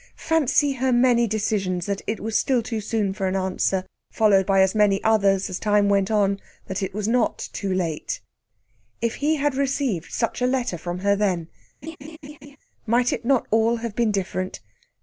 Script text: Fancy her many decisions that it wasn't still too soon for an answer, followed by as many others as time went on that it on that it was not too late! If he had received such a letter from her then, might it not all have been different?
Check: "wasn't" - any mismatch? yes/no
yes